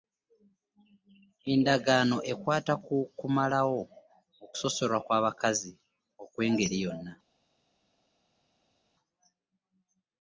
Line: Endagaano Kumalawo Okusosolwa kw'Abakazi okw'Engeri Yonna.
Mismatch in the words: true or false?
true